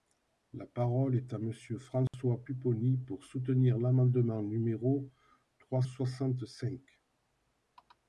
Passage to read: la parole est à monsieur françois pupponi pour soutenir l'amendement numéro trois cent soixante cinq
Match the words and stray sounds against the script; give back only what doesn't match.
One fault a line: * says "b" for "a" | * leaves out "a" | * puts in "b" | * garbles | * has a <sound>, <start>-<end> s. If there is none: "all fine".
* has a dropout, 2.1-2.1 s
* leaves out "cent"